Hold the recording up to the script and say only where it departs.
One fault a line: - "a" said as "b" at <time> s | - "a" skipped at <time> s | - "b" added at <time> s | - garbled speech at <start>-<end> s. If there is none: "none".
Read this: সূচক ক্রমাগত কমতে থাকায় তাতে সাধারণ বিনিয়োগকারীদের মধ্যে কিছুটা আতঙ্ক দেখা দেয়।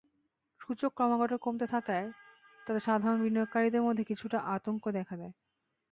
none